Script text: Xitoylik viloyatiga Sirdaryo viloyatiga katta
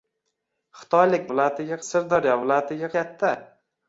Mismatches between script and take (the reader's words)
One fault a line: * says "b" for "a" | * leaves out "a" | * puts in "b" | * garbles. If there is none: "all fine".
all fine